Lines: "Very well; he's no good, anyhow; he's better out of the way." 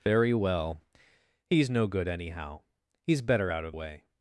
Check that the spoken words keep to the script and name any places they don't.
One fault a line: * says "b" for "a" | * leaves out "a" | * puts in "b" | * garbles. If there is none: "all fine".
* leaves out "the"